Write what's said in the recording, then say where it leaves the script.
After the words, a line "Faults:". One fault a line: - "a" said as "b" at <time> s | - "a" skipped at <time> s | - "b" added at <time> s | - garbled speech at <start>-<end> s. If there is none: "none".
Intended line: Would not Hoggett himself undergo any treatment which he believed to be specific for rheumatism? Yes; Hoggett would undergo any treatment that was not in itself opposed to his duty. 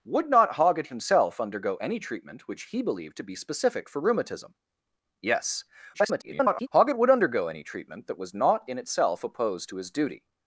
Would not Hoggett himself undergo any treatment which he believed to be specific for rheumatism? Yes; [garbled] Hoggett would undergo any treatment that was not in itself opposed to his duty.
Faults:
- garbled speech at 5.9-6.7 s